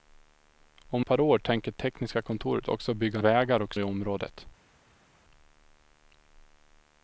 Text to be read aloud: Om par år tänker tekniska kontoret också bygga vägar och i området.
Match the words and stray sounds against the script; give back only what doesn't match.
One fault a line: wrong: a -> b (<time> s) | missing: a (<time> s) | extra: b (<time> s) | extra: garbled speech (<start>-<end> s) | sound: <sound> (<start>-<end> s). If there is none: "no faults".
no faults